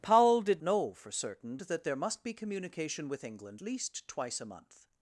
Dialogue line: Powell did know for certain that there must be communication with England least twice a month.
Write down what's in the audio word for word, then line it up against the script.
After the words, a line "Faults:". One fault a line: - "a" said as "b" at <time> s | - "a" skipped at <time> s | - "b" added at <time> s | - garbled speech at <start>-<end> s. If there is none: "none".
Powell did know for certain that there must be communication with England least twice a month.
Faults:
none